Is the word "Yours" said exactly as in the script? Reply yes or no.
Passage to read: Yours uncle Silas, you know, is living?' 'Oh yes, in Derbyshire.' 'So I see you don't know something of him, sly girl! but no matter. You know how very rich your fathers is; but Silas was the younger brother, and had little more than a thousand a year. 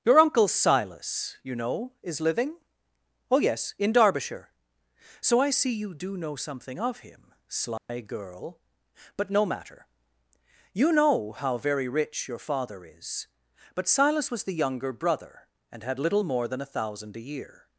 no